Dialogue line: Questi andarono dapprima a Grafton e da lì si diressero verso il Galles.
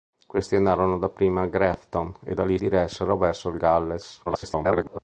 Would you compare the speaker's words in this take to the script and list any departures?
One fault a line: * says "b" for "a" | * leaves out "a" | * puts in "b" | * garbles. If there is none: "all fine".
* leaves out "si"
* garbles